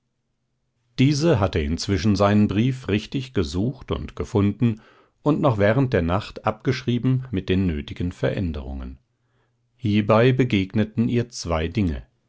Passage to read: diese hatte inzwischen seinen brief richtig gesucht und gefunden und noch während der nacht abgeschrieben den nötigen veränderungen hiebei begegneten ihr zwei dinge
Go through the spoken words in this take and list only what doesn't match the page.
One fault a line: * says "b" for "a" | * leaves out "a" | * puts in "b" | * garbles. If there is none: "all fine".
* puts in "mit"